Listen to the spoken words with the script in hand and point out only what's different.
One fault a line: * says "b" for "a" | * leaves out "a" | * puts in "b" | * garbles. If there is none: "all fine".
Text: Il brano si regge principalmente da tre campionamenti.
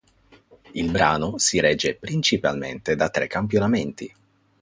all fine